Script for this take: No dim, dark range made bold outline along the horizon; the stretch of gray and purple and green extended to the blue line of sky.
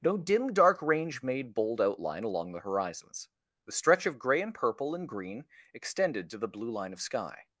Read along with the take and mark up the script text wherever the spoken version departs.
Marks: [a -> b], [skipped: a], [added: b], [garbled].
No dim, dark range made bold outline along the [horizon; -> horizons] the stretch of gray and purple and green extended to the blue line of sky.